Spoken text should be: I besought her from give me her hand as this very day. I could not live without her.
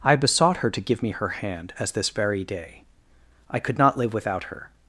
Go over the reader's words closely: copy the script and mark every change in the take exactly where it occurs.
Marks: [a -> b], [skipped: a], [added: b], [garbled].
I besought her [from -> to] give me her hand as this very day. I could not live without her.